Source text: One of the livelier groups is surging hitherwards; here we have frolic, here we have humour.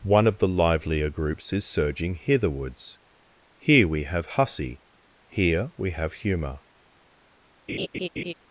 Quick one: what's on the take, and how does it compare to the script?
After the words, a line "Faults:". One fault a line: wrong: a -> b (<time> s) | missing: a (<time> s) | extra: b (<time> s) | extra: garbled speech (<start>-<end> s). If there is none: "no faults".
One of the livelier groups is surging hitherwards; here we have hussy, here we have humour.
Faults:
wrong: frolic -> hussy (4.3 s)